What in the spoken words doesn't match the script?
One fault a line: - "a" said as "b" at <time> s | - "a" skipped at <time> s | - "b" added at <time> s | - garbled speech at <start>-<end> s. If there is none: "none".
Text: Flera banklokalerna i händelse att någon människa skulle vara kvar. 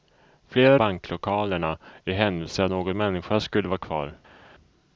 none